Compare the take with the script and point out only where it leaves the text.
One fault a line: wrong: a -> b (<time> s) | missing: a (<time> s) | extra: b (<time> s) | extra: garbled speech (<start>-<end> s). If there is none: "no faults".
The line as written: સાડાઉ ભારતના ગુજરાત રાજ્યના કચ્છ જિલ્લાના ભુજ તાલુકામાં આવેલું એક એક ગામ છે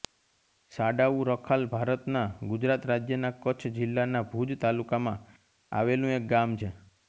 extra: રખાલ (1.3 s)
missing: એક (6.3 s)